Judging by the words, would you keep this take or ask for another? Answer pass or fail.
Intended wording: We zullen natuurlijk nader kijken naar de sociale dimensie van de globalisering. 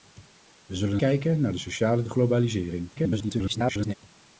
fail